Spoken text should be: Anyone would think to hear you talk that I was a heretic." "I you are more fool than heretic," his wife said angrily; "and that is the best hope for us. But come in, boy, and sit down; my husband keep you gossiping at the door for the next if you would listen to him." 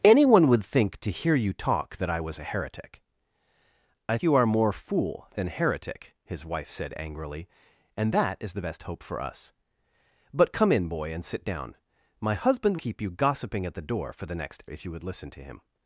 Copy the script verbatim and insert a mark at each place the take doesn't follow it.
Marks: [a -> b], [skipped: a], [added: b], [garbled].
Anyone would think to hear you talk that I was a heretic." "I you are more fool than heretic," his wife said angrily; "and that is the best hope for us. But come in, boy, and sit down; my husband keep you gossiping at the door for the next if you would listen to him."